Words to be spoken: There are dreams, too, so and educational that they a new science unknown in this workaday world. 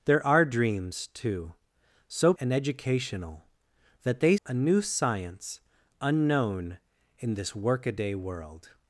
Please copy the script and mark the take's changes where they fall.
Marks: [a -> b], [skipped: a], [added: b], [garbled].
There are dreams, too, so and educational that they a new science unknown in this workaday world.